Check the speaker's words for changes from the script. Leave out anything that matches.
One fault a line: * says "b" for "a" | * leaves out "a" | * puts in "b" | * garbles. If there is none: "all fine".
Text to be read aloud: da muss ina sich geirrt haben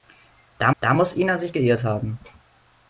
* puts in "da"